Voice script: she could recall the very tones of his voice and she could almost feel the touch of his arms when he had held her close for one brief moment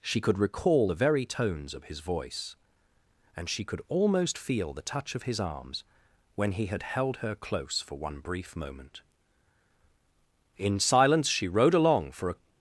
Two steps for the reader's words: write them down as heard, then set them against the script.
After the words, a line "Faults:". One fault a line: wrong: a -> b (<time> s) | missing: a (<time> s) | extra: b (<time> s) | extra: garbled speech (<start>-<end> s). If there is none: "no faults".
she could recall the very tones of his voice and she could almost feel the touch of his arms when he had held her close for one brief moment in silence she rode along for a
Faults:
extra: in silence she rode along for a (10.6 s)